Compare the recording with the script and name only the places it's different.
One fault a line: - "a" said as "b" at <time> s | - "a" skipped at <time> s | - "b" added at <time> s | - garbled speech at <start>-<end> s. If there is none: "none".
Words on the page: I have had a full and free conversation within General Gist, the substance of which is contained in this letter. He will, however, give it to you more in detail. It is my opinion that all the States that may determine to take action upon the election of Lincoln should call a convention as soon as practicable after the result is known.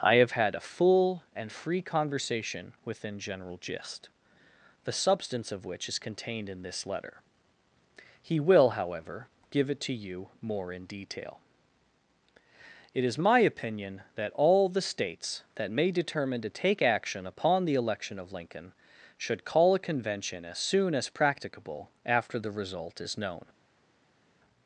none